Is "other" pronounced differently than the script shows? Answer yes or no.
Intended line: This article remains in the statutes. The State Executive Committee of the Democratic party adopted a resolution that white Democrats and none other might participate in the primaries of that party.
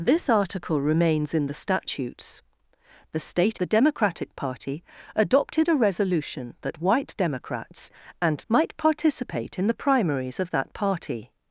yes